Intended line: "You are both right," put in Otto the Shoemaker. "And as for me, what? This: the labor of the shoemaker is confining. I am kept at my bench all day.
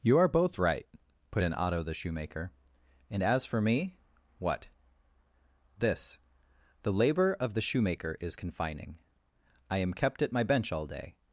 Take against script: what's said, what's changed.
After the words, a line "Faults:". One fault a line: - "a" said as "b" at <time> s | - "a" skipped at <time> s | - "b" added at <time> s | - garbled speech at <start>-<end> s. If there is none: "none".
"You are both right," put in Otto the Shoemaker. "And as for me, what? This: the labor of the shoemaker is confining. I am kept at my bench all day.
Faults:
none